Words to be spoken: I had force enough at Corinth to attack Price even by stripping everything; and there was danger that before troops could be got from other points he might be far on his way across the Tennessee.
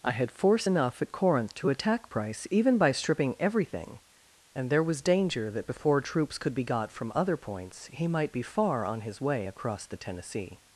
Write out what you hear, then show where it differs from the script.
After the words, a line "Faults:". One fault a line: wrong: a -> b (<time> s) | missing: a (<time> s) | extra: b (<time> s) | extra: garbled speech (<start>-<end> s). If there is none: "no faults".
I had force enough at Corinth to attack Price even by stripping everything; and there was danger that before troops could be got from other points he might be far on his way across the Tennessee.
Faults:
no faults